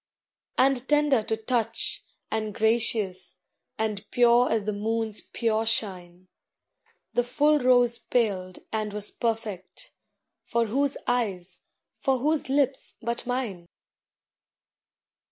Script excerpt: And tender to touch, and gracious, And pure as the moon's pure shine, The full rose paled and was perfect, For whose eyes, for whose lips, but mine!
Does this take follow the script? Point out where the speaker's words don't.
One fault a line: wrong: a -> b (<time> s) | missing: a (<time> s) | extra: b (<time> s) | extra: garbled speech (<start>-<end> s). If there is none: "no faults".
no faults